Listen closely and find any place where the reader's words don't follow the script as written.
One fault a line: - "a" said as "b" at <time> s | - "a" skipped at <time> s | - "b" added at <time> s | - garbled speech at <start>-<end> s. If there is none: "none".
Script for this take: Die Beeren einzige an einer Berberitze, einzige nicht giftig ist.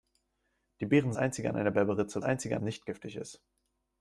none